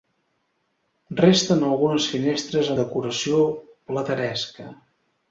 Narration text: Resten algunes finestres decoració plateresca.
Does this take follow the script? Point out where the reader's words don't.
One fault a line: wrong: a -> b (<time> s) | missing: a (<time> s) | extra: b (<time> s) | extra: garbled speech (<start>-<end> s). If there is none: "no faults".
no faults